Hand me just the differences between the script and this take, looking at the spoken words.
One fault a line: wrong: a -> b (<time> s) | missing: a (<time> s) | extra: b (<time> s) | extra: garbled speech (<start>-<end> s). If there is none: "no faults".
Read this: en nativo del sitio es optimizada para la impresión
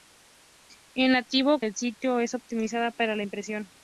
no faults